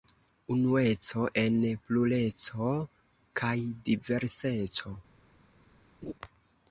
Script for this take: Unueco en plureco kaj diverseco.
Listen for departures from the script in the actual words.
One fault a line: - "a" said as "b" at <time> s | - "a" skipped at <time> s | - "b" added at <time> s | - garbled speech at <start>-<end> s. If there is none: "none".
none